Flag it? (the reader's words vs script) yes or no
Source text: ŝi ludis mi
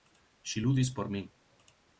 yes